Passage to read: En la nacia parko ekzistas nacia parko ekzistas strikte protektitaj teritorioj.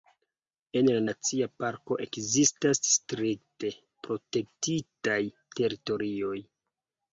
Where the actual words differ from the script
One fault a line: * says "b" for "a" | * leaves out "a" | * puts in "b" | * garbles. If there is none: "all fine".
* leaves out "nacia parko ekzistas"